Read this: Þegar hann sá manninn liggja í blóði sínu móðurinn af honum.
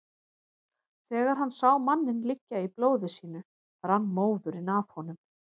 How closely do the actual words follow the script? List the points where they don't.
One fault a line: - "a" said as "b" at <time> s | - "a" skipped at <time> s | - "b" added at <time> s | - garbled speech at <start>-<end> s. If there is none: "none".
- "rann" added at 3.9 s